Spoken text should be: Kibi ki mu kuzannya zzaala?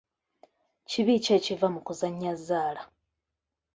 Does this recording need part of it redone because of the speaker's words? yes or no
yes